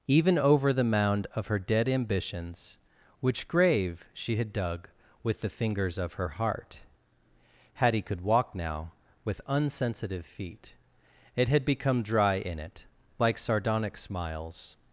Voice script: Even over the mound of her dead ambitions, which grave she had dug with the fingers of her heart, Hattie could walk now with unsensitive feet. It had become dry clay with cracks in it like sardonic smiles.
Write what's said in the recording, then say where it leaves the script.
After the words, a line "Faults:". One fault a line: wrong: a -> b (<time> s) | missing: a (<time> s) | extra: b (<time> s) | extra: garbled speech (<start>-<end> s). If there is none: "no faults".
Even over the mound of her dead ambitions, which grave she had dug with the fingers of her heart, Hattie could walk now with unsensitive feet. It had become dry in it like sardonic smiles.
Faults:
missing: clay with cracks (12.3 s)